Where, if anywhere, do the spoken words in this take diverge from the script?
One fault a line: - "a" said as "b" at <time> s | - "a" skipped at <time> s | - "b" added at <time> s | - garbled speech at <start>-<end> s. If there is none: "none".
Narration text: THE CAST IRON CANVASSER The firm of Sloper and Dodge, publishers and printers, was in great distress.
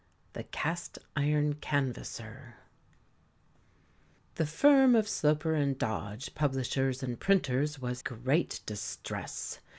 - "in" skipped at 8.0 s